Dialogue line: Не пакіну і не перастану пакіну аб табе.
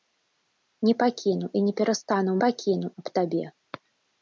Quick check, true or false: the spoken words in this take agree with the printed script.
true